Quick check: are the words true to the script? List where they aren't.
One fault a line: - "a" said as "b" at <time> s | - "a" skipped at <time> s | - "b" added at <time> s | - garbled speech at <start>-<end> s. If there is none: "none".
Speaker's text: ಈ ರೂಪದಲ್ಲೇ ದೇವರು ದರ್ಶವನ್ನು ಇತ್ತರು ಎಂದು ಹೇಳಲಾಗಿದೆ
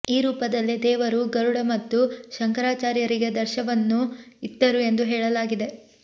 - "ಗರುಡ ಮತ್ತು ಶಂಕರಾಚಾರ್ಯರಿಗೆ" added at 1.3 s